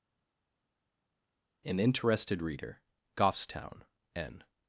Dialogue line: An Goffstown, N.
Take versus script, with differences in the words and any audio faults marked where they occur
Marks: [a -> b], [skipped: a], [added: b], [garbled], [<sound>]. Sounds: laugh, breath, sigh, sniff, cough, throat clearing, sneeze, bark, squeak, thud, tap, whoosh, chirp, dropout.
An [added: Interested Reader] Goffstown, N.